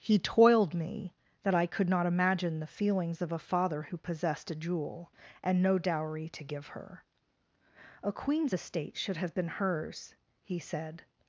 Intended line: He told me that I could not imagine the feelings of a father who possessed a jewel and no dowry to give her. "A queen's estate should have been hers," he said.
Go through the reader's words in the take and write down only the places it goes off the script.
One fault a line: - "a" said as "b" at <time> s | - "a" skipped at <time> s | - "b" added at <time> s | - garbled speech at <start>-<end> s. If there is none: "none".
- "told" said as "toiled" at 0.2 s